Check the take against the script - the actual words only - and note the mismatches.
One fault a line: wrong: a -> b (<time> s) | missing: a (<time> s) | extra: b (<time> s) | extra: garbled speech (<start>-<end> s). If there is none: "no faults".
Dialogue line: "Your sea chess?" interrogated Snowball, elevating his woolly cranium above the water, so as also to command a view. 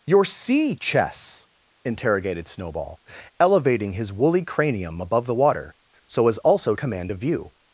missing: to (6.8 s)